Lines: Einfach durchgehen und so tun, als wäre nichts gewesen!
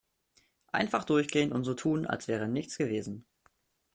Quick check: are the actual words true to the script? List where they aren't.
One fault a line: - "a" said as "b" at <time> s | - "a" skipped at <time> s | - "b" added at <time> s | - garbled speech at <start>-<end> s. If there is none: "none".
none